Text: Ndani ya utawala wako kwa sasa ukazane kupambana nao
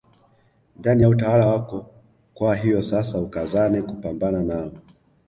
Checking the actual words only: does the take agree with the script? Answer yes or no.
no